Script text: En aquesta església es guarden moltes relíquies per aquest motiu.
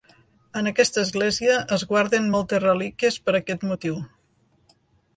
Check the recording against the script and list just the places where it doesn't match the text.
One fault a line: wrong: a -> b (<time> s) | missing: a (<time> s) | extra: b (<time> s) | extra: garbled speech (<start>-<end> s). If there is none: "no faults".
no faults